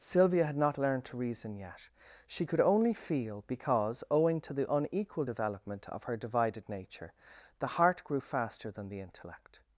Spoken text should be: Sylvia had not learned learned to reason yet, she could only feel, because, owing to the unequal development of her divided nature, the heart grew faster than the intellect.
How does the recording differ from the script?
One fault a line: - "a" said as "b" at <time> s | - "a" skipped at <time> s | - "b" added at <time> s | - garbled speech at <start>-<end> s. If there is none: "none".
- "learned" skipped at 1.1 s